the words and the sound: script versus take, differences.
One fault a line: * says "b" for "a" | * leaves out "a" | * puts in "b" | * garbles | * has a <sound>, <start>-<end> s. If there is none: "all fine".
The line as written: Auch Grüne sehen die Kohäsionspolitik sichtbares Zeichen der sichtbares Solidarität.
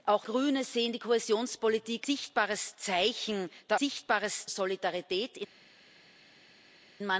all fine